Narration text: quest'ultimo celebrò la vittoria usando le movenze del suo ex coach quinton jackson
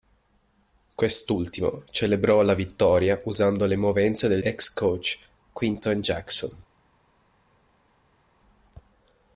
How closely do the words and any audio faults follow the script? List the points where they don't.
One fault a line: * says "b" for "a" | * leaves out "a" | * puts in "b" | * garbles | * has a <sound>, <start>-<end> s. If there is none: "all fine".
* leaves out "suo"